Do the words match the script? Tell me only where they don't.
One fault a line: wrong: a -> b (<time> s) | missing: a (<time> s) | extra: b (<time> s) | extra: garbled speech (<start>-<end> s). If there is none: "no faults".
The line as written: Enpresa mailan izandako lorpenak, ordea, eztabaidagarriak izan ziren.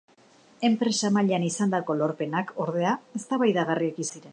missing: izan (4.1 s)